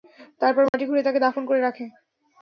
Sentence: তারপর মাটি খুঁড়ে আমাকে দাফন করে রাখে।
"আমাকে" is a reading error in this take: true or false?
true